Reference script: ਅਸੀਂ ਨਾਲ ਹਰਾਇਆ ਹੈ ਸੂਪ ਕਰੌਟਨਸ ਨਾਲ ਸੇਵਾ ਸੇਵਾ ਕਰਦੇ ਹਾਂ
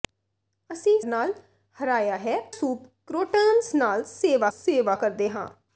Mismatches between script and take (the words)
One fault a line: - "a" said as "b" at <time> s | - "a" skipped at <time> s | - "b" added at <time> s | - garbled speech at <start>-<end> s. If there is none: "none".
none